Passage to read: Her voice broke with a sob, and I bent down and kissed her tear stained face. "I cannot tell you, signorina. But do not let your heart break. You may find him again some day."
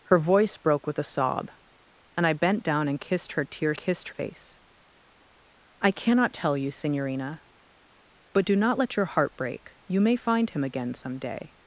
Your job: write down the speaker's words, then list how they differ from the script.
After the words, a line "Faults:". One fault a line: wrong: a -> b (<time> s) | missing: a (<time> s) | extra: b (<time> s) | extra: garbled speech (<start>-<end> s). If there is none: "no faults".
Her voice broke with a sob, and I bent down and kissed her tear kissed face. "I cannot tell you, signorina. But do not let your heart break. You may find him again some day."
Faults:
wrong: stained -> kissed (3.8 s)